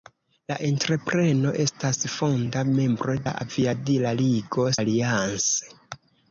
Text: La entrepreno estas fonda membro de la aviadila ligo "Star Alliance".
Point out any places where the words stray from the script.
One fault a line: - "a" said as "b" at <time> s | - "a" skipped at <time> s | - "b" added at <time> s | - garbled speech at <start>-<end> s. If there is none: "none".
- "de" skipped at 3.2 s
- "Star" skipped at 4.7 s